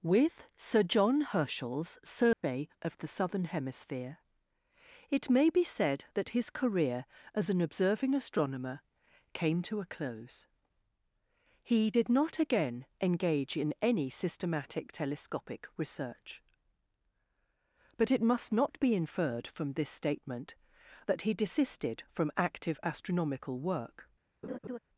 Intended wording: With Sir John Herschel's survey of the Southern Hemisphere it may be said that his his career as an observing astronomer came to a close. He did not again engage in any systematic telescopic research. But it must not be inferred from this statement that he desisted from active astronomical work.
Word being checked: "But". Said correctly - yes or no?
yes